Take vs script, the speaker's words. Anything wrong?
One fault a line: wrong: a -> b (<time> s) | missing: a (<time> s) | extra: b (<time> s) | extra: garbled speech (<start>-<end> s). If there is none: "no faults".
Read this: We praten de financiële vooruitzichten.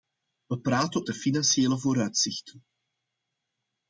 no faults